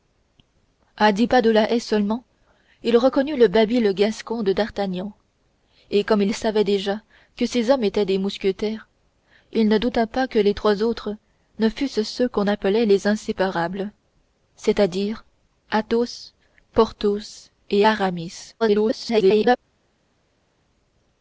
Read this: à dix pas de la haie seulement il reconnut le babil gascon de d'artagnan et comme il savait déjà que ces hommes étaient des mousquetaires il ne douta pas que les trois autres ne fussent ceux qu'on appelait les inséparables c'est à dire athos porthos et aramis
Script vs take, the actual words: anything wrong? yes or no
yes